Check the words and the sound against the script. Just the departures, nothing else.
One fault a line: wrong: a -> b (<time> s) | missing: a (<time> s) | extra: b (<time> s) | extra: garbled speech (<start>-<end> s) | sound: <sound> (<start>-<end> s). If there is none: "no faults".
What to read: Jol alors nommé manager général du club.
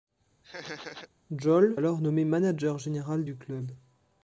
sound: laugh (0.4-1.1 s)